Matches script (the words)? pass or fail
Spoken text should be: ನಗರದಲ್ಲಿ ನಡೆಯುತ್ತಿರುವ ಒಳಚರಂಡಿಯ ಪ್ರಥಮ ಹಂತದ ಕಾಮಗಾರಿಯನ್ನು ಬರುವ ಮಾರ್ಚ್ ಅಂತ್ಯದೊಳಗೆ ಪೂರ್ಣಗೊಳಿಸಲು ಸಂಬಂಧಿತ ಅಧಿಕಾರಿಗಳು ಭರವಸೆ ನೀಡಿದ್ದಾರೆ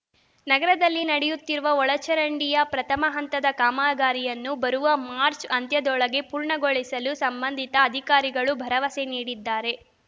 pass